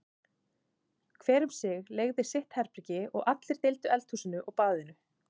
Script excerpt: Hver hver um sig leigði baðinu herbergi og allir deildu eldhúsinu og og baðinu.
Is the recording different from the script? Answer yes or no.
yes